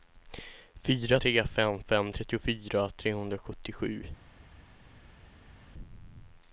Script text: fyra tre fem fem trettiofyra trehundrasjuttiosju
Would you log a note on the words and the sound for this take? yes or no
no